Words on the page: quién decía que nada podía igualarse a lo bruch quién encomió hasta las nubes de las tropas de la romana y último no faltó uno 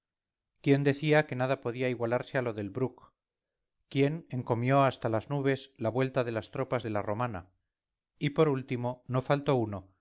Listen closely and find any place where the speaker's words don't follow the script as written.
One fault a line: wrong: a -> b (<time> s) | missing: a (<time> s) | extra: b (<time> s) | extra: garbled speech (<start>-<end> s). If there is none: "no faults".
extra: del (2.5 s)
extra: la vuelta (5.8 s)
extra: por (8.3 s)